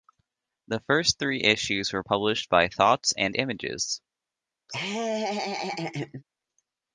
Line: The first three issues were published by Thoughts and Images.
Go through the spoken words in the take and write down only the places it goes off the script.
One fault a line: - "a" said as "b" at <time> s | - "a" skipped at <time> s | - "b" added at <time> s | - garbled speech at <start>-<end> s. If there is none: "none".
none